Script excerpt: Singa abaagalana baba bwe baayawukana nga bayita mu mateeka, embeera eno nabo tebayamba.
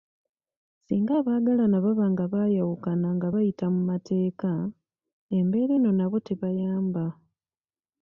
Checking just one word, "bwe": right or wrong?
wrong